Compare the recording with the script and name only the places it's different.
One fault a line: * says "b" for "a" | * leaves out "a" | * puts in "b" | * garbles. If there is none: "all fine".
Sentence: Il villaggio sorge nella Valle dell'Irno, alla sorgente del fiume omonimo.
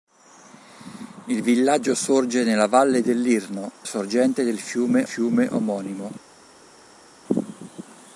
* leaves out "alla"
* puts in "fiume"